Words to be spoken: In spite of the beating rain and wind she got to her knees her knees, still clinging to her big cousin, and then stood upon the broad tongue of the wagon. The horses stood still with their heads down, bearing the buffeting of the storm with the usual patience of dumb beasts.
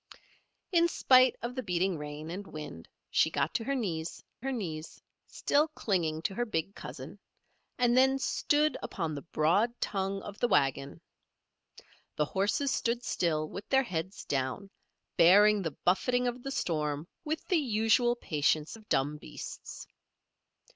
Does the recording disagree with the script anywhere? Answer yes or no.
no